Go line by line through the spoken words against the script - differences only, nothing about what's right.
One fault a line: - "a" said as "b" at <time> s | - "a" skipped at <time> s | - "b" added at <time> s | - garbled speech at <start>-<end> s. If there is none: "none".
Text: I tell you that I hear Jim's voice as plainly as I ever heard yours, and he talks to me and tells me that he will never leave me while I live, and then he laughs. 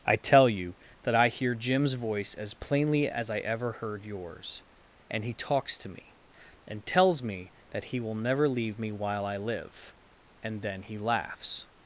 none